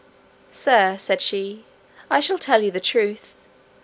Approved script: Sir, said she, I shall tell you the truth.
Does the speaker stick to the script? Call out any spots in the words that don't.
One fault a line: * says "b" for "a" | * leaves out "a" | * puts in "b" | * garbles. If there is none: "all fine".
all fine